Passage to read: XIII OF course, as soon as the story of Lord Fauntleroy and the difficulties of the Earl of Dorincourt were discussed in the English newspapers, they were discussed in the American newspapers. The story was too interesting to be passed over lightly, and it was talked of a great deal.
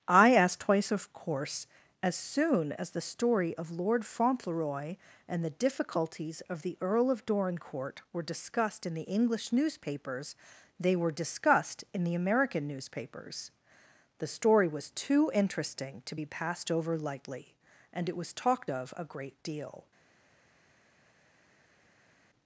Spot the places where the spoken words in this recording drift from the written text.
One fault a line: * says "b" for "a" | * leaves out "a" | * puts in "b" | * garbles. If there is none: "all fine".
* says "I asked twice" for "XIII"